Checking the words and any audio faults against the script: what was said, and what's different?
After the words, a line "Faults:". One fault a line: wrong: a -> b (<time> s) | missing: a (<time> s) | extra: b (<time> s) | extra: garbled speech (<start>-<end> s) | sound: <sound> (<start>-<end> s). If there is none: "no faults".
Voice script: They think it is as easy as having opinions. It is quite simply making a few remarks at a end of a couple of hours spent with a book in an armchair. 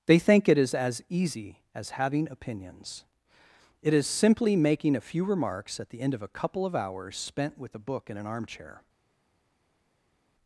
They think it is as easy as having opinions. It is simply making a few remarks at the end of a couple of hours spent with a book in an armchair.
Faults:
missing: quite (4.1 s)
wrong: a -> the (5.9 s)